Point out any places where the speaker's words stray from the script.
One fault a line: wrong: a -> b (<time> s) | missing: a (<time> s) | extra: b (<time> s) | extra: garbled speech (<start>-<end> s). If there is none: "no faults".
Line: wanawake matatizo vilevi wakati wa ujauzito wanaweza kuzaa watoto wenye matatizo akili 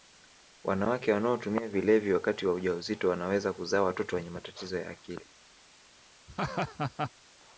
wrong: matatizo -> wanaotumia (1.1 s)
extra: ya (4.8 s)